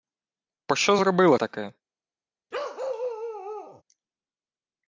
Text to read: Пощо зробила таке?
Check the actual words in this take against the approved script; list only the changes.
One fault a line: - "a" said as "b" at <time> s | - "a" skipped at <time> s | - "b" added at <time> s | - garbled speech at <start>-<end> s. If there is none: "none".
none